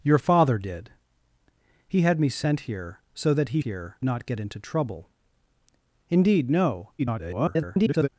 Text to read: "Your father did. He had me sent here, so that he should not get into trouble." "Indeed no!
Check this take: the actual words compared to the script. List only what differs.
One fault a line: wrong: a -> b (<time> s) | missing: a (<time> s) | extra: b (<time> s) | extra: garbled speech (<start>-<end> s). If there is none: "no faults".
wrong: should -> here (3.6 s)
extra: garbled speech (7.0-8.1 s)